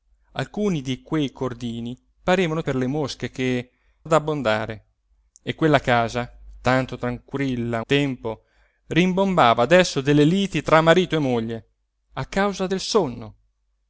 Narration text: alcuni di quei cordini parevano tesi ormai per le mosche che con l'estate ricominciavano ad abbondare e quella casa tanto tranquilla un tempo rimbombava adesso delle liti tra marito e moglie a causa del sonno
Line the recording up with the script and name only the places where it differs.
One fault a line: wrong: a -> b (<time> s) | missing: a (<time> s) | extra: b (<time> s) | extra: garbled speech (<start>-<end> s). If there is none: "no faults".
missing: tesi ormai (2.6 s)
missing: con l'estate ricominciavano (3.7 s)
missing: un (7.8 s)